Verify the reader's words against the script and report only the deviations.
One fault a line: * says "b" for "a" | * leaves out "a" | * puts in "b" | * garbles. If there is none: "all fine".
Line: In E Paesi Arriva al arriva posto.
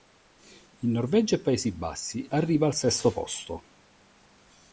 * puts in "Norvegia"
* puts in "Bassi"
* says "sesto" for "arriva"